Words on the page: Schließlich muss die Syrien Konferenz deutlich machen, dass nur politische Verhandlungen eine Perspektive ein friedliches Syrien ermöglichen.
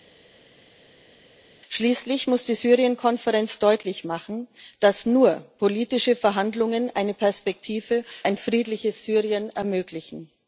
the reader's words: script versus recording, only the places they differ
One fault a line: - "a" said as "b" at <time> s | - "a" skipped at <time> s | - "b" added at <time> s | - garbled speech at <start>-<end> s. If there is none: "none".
none